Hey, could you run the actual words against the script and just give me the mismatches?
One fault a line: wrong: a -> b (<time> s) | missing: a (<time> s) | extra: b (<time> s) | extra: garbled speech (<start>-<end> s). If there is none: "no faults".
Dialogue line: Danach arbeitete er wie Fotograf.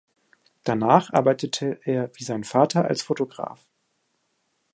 extra: sein Vater als (2.2 s)